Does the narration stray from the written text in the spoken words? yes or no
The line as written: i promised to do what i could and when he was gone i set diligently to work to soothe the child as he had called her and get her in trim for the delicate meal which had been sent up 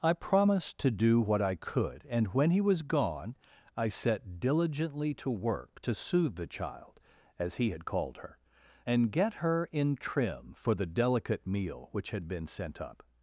no